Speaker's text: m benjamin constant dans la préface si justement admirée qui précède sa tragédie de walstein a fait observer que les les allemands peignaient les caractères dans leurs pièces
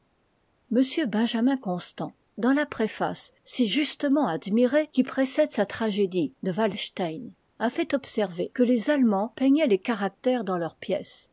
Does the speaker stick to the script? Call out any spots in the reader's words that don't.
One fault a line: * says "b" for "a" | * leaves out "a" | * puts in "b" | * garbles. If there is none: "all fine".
* leaves out "les"